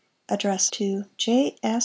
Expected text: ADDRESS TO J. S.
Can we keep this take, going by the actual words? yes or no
yes